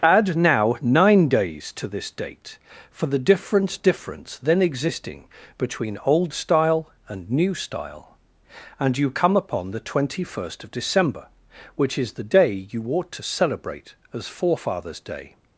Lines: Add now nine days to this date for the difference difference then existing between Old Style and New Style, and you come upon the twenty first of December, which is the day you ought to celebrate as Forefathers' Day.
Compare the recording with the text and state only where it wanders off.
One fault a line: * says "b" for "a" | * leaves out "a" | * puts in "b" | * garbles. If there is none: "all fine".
all fine